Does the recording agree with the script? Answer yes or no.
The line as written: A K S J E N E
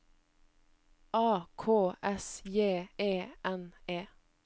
yes